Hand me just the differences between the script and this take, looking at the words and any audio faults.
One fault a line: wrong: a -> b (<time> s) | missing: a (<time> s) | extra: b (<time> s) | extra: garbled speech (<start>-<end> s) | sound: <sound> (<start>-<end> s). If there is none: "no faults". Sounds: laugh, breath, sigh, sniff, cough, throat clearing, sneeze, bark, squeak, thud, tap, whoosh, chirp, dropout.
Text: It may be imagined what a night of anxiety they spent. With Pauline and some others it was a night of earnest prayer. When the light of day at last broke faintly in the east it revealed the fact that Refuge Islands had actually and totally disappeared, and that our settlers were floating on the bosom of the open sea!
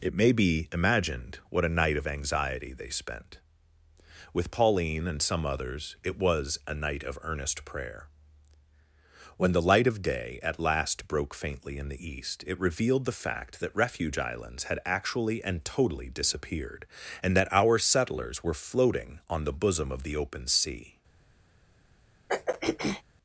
sound: throat clearing (22.3-23.0 s)